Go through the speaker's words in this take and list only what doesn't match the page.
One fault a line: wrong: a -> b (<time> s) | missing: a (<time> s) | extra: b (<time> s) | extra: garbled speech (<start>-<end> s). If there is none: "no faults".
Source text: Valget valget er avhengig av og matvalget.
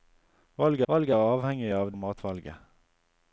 no faults